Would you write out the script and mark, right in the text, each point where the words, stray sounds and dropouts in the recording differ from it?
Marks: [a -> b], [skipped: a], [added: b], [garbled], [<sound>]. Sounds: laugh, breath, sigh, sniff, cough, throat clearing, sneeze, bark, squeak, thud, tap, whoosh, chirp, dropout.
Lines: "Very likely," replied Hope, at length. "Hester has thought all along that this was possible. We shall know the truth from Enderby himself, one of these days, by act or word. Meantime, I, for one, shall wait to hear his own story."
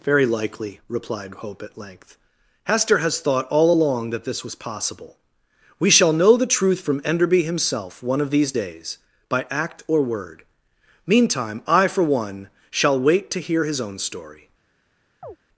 "Very likely," replied Hope, at length. "Hester has thought all along that this was possible. We shall know the truth from Enderby himself, one of these days, by act or word. Meantime, I, for one, shall wait to hear his own story." [chirp]